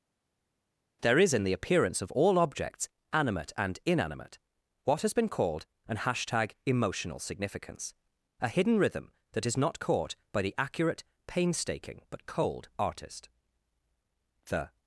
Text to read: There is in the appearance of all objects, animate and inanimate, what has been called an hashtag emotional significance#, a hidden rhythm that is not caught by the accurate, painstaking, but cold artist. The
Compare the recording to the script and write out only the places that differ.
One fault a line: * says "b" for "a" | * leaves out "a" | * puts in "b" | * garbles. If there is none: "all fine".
all fine